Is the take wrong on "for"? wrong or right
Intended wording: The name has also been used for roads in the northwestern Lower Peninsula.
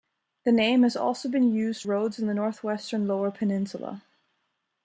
wrong